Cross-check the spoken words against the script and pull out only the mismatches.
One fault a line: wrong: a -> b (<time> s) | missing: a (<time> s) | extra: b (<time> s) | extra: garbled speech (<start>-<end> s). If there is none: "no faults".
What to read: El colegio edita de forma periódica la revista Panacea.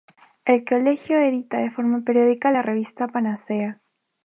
no faults